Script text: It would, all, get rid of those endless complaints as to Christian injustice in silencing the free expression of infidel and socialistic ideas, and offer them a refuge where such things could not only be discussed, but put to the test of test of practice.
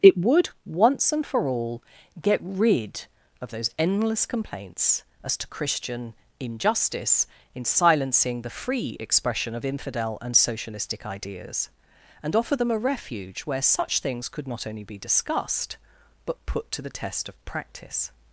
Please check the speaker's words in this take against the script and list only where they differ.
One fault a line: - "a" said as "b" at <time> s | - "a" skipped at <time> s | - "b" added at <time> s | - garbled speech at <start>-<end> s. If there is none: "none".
- "once and for" added at 0.7 s
- "test of" skipped at 17.4 s